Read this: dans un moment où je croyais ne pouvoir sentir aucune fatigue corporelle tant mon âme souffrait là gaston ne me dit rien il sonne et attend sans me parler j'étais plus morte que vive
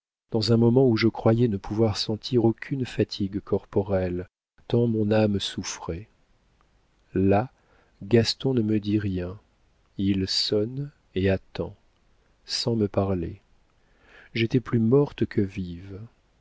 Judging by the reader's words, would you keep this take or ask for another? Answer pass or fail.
pass